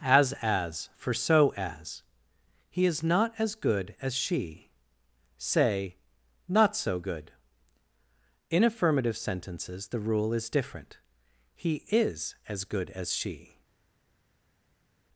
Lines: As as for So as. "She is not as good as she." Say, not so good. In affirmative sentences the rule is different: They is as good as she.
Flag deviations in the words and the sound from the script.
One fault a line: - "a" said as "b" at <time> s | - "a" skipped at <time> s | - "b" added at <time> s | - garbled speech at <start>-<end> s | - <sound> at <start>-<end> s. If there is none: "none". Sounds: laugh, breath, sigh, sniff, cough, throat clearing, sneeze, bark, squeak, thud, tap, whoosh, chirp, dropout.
- "She" said as "He" at 2.7 s
- "They" said as "He" at 11.5 s